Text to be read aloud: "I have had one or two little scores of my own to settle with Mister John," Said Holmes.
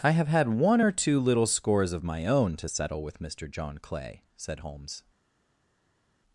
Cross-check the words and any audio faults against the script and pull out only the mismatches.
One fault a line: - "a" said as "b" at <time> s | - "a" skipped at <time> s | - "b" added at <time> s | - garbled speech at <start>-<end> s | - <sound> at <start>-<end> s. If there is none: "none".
- "Clay" added at 3.8 s